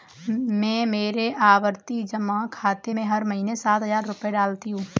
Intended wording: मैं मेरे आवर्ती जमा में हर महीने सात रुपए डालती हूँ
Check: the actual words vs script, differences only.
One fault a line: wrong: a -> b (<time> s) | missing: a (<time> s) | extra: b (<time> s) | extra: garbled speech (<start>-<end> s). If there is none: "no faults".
extra: खाते (2.5 s)
extra: हजार (3.8 s)